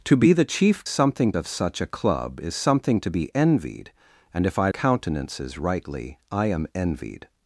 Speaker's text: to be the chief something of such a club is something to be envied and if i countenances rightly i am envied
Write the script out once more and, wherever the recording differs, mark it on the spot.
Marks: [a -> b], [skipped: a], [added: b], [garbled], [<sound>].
to be the chief something of such a club is something to be envied and if i countenances rightly i am envied